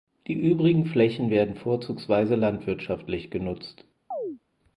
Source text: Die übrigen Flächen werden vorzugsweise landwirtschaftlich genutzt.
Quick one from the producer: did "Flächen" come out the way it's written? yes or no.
yes